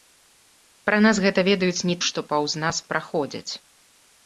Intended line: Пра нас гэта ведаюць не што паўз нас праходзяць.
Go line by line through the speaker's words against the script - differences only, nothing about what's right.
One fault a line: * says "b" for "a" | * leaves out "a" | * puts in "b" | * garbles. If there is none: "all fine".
all fine